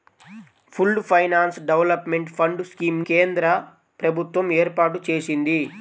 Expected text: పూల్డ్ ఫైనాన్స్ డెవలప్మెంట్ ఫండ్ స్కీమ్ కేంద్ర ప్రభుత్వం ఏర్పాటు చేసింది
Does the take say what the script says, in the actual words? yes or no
yes